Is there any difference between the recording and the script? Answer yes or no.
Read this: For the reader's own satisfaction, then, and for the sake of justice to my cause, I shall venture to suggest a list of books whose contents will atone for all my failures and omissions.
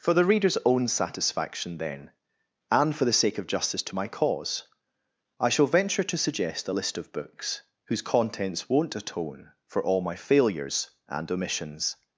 yes